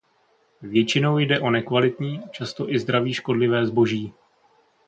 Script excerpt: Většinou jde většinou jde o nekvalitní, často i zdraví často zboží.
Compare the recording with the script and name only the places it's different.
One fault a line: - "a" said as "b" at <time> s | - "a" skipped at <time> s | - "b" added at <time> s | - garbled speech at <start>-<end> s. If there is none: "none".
- "většinou jde" skipped at 1.4 s
- "často" said as "škodlivé" at 3.1 s